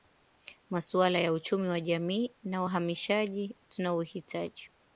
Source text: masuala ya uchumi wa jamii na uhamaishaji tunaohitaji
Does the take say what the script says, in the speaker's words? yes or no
yes